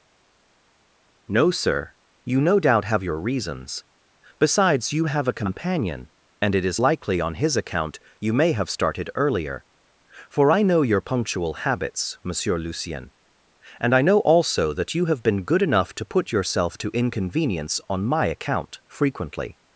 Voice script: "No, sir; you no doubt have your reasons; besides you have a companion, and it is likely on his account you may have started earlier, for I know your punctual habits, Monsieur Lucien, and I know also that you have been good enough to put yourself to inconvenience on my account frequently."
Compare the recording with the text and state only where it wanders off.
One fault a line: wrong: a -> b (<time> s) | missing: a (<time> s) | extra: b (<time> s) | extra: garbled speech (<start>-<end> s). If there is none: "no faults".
no faults